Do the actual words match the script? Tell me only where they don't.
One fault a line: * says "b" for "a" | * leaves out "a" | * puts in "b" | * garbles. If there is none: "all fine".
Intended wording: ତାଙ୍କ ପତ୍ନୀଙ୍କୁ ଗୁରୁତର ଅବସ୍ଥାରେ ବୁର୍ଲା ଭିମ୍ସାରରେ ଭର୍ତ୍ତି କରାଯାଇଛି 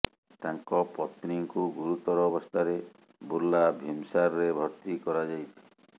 all fine